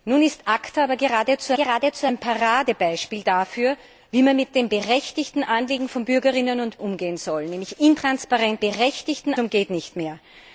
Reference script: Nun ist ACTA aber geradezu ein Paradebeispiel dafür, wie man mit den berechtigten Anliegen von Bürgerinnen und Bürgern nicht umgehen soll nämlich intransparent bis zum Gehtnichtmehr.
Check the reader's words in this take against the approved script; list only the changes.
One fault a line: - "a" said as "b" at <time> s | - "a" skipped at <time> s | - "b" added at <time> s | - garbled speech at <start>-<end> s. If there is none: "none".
- "geradezu" added at 1.5 s
- "Bürgern nicht" skipped at 6.8 s
- "bis" said as "berechtigten" at 8.6 s